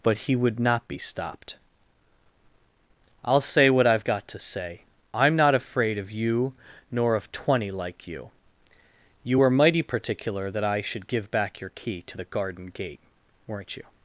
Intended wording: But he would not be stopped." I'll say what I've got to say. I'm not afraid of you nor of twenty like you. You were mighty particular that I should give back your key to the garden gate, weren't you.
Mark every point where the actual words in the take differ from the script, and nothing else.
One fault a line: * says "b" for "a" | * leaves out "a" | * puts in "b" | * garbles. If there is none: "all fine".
all fine